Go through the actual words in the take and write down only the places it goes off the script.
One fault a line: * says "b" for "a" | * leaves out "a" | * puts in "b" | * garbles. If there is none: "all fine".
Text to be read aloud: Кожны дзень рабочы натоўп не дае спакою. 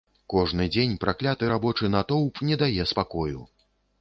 * puts in "пракляты"